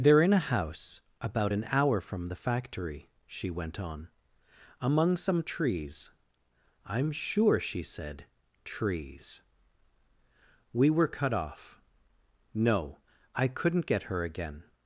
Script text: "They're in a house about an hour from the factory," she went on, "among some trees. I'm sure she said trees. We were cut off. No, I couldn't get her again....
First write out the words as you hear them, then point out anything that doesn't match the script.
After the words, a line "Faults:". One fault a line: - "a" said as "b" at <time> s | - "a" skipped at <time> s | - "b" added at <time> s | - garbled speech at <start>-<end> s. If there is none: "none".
"They're in a house about an hour from the factory," she went on, "among some trees. I'm sure she said trees. We were cut off. No, I couldn't get her again....
Faults:
none